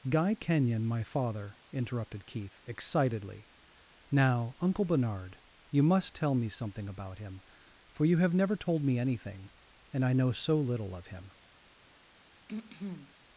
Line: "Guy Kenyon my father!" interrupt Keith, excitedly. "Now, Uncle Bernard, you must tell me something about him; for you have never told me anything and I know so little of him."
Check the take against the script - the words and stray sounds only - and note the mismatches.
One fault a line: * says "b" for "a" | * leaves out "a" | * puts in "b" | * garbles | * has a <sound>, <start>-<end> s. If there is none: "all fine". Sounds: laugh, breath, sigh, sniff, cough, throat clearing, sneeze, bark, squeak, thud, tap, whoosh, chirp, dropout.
* says "interrupted" for "interrupt"
* has a throat clearing, 12.5-13.1 s